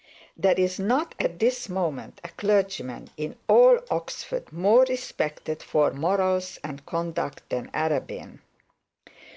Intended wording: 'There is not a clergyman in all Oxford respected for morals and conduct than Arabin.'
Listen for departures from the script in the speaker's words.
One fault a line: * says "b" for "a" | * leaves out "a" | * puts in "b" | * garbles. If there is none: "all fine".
* puts in "at this moment"
* puts in "more"